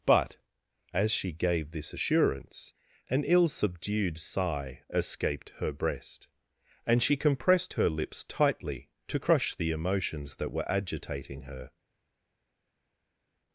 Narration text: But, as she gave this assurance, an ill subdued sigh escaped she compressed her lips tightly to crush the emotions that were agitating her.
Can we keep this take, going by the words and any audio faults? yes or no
no